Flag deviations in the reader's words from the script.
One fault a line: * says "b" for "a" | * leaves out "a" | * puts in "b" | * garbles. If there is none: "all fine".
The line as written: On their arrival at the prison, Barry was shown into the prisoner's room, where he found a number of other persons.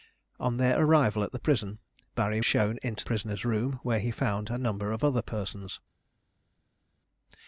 * leaves out "was"
* leaves out "the"